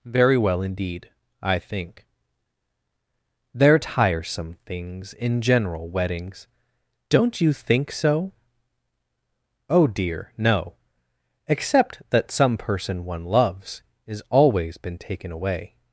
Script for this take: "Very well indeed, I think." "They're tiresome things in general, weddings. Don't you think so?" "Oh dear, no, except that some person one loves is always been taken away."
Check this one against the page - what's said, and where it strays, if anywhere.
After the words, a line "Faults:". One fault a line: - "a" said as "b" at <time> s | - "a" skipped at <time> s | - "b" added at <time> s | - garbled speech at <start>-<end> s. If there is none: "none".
"Very well indeed, I think." "They're tiresome things in general, weddings. Don't you think so?" "Oh dear, no, except that some person one loves is always been taken away."
Faults:
none